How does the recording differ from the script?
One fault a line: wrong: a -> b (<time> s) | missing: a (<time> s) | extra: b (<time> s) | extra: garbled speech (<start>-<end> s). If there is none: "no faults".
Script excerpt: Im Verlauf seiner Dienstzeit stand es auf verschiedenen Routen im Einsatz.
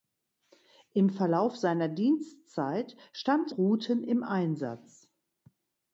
missing: es auf verschiedenen (3.5 s)